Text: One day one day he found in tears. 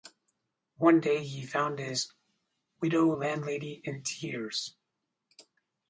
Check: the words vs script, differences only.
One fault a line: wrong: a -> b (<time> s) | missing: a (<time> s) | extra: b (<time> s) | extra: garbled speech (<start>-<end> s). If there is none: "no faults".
wrong: one day he found -> he found his widow landlady (1.2 s)